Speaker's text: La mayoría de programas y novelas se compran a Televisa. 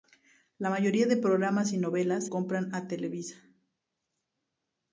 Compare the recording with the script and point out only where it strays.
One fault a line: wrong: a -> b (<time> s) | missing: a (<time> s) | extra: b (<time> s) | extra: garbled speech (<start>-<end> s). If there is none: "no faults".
missing: se (2.2 s)